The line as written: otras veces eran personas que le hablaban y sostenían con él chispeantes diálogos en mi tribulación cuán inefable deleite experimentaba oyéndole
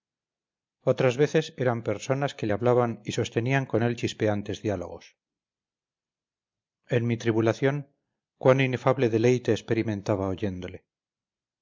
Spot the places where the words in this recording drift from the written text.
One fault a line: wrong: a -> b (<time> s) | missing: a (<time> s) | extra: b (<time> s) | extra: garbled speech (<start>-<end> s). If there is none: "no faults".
no faults